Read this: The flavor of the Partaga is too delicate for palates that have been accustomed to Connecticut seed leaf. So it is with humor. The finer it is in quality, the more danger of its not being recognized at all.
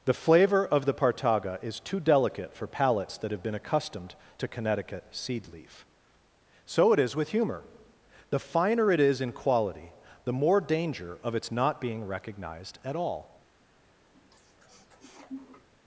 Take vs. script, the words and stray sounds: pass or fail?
fail